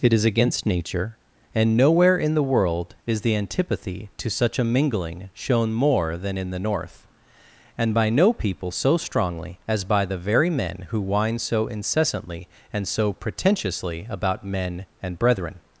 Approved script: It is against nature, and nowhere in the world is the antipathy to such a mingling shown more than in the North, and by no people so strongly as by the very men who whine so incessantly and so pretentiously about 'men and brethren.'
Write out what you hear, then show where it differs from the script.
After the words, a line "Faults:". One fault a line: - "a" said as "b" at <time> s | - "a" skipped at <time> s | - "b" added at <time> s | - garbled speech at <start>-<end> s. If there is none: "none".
It is against nature, and nowhere in the world is the antipathy to such a mingling shown more than in the North, and by no people so strongly as by the very men who whine so incessantly and so pretentiously about 'men and brethren.'
Faults:
none